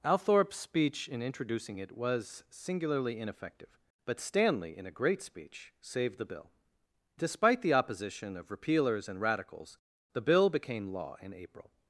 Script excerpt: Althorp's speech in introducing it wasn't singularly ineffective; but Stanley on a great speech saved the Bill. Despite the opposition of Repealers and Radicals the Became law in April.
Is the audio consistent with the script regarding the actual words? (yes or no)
no